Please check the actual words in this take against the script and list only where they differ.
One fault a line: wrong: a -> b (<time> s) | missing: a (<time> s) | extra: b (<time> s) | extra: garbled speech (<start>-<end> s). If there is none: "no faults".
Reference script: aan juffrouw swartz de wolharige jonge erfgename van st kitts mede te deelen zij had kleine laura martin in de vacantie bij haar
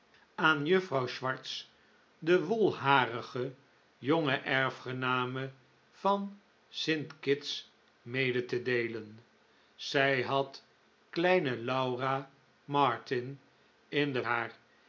missing: vacantie bij (14.2 s)